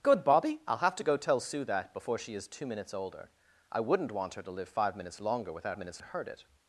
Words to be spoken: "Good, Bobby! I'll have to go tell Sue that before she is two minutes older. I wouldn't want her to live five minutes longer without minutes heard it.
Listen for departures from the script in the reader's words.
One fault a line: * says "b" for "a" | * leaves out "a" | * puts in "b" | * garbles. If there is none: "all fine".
all fine